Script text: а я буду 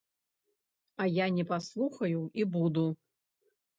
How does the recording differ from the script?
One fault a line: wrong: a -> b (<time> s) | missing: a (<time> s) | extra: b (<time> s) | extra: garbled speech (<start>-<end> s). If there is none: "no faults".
extra: не паслухаю і (1.3 s)